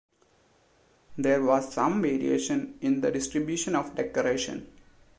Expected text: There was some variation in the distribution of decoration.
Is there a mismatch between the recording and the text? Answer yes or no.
no